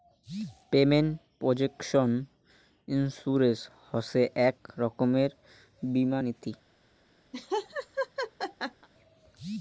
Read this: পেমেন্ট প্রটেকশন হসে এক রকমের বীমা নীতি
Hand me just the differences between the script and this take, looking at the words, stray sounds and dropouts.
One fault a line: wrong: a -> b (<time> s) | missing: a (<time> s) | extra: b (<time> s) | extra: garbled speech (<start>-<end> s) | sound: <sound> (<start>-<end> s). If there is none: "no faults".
extra: ইন্সুরেন্স (2.9 s)
sound: laugh (7.3-8.9 s)